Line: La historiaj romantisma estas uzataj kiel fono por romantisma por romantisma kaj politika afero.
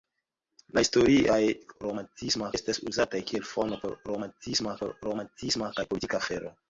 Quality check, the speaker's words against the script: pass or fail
pass